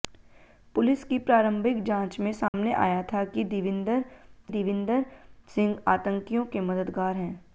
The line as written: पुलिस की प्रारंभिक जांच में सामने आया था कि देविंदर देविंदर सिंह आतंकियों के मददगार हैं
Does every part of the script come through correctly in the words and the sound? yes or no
no